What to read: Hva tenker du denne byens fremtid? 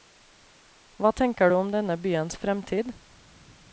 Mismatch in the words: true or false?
true